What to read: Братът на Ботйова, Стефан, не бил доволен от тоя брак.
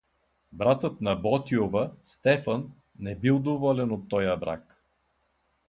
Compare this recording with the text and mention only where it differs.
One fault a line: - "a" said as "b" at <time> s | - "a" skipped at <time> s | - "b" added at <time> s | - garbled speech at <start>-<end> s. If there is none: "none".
none